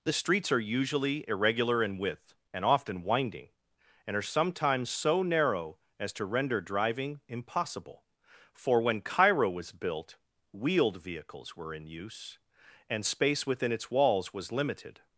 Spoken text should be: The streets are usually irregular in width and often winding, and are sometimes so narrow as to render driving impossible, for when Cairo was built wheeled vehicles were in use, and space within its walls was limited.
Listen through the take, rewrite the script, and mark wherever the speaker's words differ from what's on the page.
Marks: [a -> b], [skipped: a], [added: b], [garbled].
The streets are usually irregular in width and often winding, and are sometimes so narrow as to render driving impossible, for when Cairo was built wheeled vehicles were in use, and space within its walls was limited.